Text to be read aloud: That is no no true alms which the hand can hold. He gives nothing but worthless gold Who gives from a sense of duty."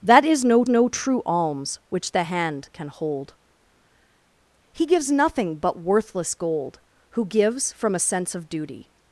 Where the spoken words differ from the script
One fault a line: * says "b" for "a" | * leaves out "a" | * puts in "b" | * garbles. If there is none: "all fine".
all fine